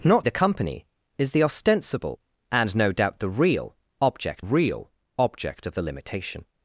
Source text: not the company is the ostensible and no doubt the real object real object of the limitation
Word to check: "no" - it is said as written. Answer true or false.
true